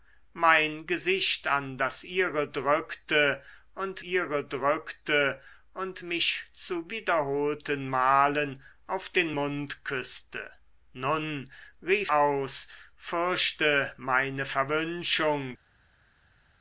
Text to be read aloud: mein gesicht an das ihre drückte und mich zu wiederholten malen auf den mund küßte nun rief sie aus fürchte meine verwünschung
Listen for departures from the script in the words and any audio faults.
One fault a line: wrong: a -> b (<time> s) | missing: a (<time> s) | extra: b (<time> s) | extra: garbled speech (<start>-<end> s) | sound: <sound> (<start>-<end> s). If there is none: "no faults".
extra: ihre drückte und (4.0 s)
missing: sie (12.1 s)